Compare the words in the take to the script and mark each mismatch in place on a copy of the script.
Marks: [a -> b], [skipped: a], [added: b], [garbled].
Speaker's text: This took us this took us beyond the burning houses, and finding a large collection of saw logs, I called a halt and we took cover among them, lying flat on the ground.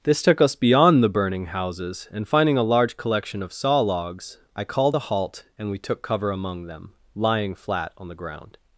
This took us [skipped: this took us] beyond the burning houses, and finding a large collection of saw logs, I called a halt and we took cover among them, lying flat on the ground.